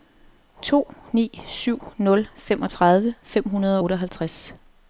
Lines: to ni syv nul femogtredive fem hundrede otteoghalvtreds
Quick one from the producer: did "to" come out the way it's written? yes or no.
yes